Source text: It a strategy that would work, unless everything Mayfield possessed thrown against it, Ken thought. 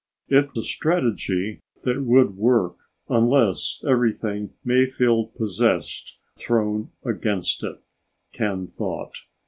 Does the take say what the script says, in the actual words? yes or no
yes